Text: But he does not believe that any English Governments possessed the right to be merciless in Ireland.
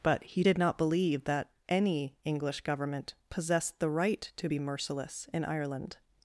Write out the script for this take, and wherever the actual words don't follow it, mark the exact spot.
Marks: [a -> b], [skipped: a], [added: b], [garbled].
But he [does -> did] not believe that any English [Governments -> Government] possessed the right to be merciless in Ireland.